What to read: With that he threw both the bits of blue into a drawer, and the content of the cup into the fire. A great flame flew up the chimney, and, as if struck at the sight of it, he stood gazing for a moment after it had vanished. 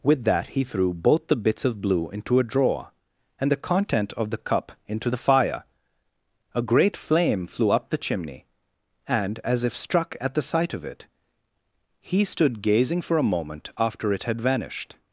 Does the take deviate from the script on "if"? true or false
false